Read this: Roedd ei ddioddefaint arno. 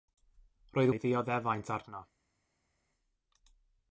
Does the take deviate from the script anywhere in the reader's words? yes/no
no